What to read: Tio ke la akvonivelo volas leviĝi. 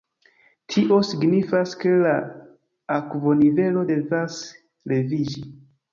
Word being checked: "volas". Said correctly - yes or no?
no